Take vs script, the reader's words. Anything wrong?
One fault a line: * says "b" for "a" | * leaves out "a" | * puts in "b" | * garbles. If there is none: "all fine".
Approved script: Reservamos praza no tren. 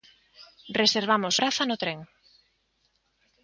all fine